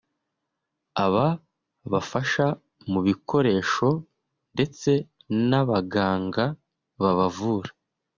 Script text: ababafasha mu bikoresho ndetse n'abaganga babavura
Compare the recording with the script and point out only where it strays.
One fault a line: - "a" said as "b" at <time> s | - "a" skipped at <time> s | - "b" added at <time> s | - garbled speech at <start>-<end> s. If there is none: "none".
none